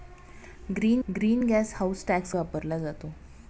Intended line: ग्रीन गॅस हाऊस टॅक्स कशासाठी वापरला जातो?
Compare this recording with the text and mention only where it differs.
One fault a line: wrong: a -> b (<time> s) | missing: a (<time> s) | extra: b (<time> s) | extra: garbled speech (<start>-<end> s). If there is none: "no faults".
extra: ग्रीन (1.1 s)
missing: कशासाठी (2.3 s)